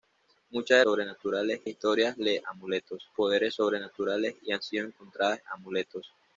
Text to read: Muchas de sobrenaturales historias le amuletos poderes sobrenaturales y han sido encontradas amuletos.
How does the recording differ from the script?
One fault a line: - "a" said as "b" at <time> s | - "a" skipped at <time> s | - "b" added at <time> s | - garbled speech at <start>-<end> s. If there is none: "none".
none